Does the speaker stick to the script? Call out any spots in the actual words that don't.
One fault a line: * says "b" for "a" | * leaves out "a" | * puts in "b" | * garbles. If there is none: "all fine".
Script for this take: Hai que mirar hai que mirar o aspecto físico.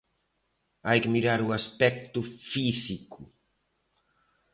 * leaves out "hai que mirar"